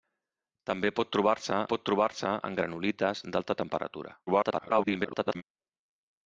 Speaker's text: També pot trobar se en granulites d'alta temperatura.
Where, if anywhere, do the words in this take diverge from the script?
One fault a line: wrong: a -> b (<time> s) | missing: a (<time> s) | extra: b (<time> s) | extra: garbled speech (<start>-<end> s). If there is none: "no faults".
extra: pot trobar se (1.7 s)
extra: garbled speech (4.3-5.4 s)